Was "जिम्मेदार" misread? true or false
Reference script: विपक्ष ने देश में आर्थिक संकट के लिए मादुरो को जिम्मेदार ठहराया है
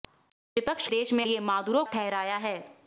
true